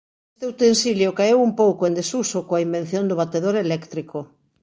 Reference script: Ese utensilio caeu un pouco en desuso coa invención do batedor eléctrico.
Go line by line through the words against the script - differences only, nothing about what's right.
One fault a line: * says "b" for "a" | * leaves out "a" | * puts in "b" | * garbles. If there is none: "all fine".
* says "Este" for "Ese"